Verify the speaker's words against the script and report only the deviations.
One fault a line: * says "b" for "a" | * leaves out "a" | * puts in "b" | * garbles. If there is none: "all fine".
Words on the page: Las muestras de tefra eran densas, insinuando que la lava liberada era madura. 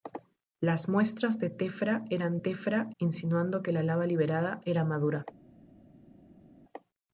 * says "tefra" for "densas"